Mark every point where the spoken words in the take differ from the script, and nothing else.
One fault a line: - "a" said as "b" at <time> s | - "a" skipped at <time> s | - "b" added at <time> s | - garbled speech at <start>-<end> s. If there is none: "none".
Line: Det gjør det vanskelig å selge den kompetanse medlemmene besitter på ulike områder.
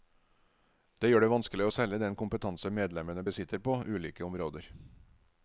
none